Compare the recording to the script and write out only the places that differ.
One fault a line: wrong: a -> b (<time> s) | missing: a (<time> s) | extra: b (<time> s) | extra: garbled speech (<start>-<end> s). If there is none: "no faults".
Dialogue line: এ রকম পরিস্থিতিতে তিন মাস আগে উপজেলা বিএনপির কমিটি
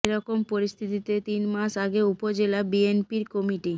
no faults